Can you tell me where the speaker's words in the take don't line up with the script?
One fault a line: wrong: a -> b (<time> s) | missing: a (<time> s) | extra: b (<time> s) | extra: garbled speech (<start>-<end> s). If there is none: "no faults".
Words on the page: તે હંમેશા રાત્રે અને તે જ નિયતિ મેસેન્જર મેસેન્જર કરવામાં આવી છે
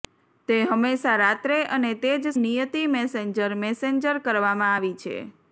no faults